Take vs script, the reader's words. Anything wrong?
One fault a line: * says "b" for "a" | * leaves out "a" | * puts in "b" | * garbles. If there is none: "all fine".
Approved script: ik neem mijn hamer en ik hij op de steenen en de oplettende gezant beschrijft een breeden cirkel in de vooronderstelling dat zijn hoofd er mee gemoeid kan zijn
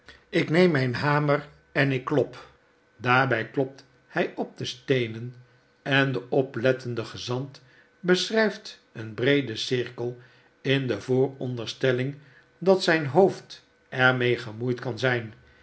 * puts in "klop daarbij klopt"